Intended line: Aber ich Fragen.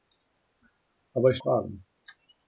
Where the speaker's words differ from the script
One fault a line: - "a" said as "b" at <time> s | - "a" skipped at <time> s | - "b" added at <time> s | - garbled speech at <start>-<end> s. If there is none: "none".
none